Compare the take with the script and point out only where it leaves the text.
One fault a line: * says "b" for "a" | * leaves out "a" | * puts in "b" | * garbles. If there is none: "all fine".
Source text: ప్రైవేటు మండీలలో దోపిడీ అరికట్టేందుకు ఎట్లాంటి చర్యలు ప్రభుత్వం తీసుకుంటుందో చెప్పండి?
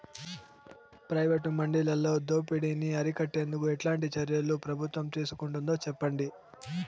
* puts in "ని"